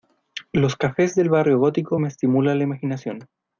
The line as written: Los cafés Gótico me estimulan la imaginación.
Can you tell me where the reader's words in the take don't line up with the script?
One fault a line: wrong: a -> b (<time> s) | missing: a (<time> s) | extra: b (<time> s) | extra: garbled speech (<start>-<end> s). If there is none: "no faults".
extra: del Barrio (1.1 s)